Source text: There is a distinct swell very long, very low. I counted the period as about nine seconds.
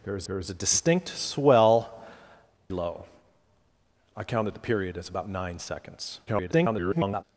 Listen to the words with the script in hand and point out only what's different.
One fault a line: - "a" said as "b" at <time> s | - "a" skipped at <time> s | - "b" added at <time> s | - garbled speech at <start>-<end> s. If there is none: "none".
- "there is" added at 0.2 s
- "very long very" skipped at 1.9 s
- garbled speech at 6.3-7.2 s